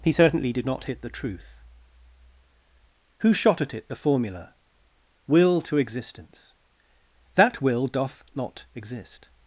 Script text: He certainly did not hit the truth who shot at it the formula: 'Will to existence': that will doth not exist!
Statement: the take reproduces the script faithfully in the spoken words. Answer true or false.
true